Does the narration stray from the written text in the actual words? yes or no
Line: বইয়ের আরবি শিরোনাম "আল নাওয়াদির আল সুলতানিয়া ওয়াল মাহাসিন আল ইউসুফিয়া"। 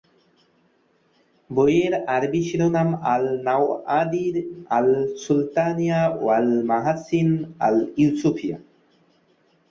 no